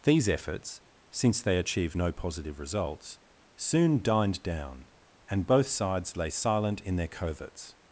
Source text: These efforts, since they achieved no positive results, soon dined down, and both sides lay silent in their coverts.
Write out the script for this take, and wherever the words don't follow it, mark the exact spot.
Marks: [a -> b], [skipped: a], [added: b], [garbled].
These efforts, since they achieved no positive results, soon dined down, and both sides lay silent in their coverts.